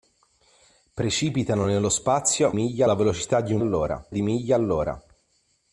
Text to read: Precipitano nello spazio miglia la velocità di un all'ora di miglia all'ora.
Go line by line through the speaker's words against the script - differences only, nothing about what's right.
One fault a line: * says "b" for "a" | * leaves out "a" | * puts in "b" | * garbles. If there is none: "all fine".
all fine